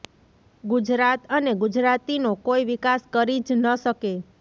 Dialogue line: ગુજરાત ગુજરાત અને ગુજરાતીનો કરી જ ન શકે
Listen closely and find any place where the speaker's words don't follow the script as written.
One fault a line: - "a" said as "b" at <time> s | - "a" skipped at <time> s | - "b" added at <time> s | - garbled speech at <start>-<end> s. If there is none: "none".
- "ગુજરાત" skipped at 1.2 s
- "કોઈ વિકાસ" added at 2.5 s